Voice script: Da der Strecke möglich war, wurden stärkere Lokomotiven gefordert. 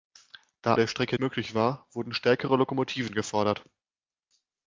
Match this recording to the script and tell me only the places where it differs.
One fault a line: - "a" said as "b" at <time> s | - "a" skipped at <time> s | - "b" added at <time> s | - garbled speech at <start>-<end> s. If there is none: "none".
none